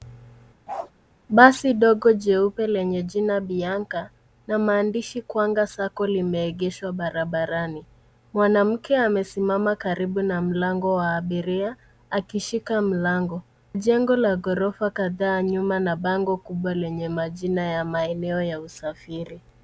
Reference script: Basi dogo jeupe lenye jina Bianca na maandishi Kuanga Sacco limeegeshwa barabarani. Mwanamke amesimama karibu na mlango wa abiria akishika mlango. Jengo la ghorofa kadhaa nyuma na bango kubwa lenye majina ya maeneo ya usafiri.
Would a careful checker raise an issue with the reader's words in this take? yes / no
no